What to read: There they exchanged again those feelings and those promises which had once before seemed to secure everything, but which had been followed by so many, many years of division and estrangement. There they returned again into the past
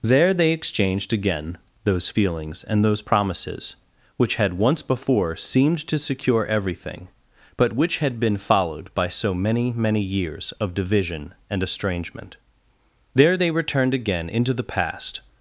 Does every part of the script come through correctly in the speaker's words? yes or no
yes